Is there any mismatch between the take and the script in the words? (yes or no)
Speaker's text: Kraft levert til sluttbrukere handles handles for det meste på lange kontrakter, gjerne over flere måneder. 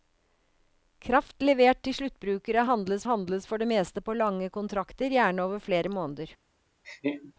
no